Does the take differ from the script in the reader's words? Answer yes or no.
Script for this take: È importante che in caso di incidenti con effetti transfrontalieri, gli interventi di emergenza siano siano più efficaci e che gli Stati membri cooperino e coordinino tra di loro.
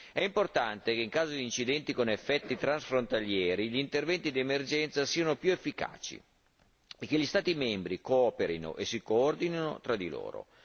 yes